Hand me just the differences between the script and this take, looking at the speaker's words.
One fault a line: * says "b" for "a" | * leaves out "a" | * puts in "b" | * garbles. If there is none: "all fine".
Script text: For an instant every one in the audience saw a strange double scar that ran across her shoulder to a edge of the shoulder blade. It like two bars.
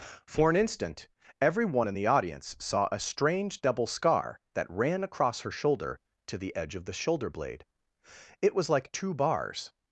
* says "the" for "a"
* puts in "was"